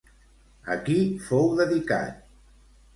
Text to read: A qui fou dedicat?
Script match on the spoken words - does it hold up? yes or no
yes